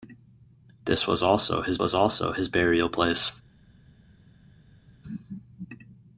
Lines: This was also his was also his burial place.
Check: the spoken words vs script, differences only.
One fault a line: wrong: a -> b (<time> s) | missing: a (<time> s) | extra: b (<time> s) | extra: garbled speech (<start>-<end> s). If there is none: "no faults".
no faults